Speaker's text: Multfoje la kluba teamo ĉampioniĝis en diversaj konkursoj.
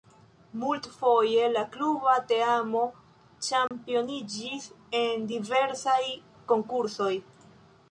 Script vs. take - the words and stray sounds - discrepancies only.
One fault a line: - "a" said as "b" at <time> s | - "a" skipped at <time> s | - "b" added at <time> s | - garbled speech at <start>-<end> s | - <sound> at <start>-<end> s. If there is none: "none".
- dropout at 3.7-3.7 s